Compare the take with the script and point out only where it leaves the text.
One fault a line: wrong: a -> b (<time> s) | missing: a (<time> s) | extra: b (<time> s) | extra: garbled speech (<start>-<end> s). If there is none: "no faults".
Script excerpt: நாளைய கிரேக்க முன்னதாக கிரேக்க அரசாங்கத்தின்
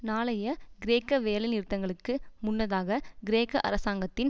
extra: வேலைநிறுத்தங்களுக்கு (1.2 s)